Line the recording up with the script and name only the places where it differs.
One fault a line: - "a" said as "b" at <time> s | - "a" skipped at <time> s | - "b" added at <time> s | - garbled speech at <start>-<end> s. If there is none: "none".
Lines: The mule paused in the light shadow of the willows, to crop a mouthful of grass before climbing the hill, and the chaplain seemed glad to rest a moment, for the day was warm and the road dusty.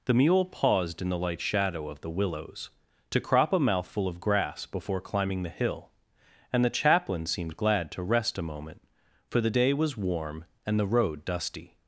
none